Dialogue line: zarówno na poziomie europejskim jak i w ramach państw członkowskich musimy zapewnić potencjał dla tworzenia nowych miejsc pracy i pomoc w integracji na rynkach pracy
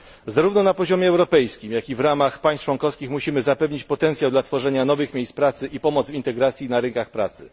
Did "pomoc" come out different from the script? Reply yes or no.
no